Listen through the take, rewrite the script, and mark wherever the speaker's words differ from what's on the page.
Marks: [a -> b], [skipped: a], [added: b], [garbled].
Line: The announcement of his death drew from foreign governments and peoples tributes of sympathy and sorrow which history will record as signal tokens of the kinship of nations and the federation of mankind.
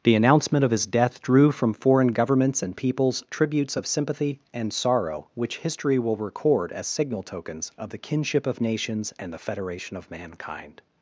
The announcement of his death drew from foreign governments and peoples tributes of sympathy and sorrow which history will record as signal tokens of the kinship of nations and the federation of mankind.